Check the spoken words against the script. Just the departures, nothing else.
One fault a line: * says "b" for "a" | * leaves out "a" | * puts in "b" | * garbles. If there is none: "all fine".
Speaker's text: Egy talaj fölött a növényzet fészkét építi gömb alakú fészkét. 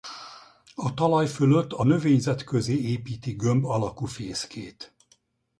* says "A" for "Egy"
* says "közé" for "fészkét"